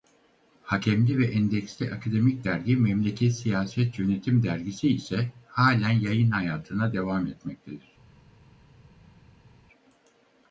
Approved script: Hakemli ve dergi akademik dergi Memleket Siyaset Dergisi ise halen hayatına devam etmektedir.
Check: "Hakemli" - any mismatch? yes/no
no